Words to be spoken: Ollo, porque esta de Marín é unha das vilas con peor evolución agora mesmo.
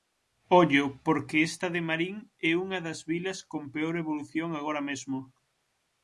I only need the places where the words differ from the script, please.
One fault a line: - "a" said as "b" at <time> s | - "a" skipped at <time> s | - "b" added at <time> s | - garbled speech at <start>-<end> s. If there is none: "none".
none